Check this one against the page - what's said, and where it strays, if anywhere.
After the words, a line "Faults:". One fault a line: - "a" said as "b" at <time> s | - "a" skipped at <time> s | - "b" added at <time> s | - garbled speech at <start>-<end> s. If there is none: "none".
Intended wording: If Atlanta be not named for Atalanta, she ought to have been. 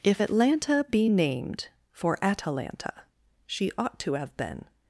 If Atlanta be named for Atalanta, she ought to have been.
Faults:
- "not" skipped at 1.1 s